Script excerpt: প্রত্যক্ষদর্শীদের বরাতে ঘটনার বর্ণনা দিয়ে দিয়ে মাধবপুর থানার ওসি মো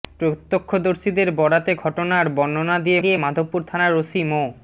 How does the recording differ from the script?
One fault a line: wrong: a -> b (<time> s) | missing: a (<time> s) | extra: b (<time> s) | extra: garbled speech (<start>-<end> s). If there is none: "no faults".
no faults